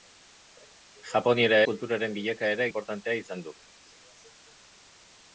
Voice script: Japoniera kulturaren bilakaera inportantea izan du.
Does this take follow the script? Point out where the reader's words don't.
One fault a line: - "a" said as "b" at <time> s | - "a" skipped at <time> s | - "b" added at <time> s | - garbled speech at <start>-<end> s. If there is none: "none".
none